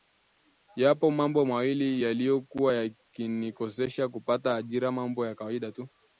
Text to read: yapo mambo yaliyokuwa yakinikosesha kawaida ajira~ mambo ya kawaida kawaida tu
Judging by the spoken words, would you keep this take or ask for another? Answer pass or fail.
fail